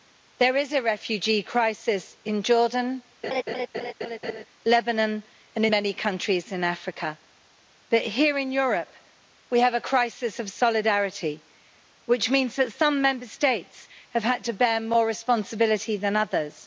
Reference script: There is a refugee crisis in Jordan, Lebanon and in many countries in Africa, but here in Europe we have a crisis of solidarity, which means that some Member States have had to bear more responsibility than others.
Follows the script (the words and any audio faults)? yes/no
no